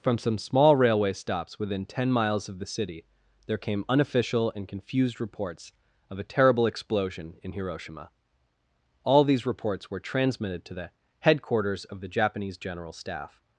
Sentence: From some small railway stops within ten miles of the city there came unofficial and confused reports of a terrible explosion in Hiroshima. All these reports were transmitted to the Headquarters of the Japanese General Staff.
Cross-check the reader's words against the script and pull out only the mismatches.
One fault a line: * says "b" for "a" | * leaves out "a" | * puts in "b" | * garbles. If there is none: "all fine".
all fine